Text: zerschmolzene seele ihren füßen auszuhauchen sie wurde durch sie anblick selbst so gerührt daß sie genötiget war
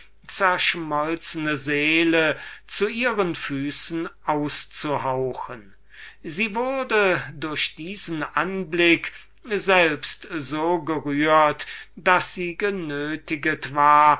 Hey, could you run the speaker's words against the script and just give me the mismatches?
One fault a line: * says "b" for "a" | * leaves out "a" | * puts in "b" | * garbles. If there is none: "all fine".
* puts in "zu"
* says "diesen" for "sie"